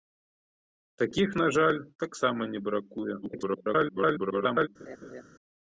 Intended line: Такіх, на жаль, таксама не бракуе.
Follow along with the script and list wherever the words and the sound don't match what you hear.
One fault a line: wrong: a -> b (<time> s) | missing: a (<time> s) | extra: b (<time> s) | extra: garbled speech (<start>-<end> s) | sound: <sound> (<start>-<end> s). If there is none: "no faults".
extra: garbled speech (3.2-4.7 s)
sound: laugh (4.8-5.2 s)